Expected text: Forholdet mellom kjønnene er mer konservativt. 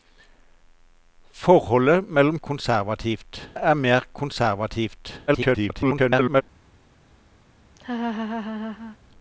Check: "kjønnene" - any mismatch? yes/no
yes